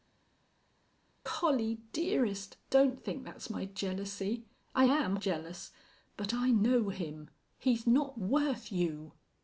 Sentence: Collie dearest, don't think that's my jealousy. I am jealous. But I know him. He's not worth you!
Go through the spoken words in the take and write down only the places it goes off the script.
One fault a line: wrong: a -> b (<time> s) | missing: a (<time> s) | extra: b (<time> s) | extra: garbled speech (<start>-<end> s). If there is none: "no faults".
no faults